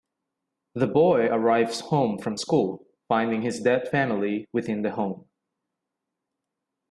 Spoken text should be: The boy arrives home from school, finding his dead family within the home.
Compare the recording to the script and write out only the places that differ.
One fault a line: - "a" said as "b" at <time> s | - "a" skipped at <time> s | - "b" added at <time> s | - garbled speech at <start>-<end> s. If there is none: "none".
none